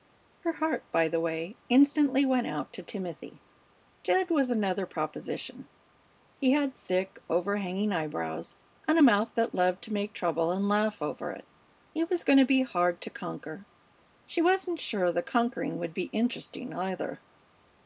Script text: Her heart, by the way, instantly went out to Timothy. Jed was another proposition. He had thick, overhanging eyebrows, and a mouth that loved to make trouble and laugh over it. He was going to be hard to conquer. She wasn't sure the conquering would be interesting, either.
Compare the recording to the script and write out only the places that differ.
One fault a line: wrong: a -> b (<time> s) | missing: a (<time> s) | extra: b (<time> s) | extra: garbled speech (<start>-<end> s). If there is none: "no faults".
no faults